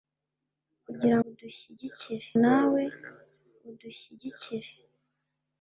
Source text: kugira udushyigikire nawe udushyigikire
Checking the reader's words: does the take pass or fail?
pass